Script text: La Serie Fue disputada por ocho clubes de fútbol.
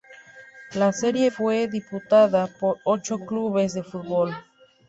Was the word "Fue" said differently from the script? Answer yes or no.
no